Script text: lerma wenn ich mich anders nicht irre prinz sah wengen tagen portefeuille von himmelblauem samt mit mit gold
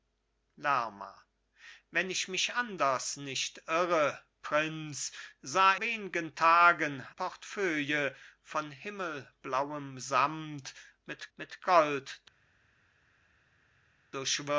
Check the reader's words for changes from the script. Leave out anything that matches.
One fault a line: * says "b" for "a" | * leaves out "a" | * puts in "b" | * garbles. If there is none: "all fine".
all fine